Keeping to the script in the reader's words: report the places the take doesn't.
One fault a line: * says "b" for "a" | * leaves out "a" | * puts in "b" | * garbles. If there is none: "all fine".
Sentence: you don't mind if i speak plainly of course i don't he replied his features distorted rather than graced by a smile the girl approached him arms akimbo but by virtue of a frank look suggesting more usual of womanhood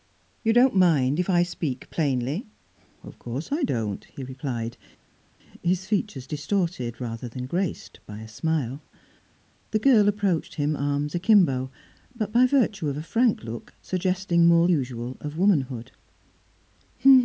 all fine